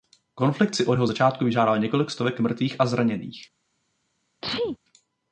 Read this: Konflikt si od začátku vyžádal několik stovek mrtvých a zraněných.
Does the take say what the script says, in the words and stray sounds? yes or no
no